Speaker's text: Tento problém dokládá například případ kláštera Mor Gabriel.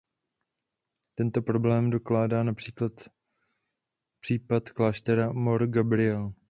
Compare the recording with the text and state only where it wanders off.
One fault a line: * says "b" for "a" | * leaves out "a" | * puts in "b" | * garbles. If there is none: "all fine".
all fine